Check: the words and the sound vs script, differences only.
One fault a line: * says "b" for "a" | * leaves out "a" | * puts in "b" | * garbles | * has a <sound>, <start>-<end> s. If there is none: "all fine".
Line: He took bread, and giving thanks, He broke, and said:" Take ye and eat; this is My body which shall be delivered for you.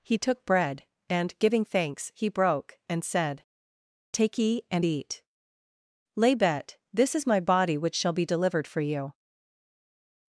* puts in "lay bet"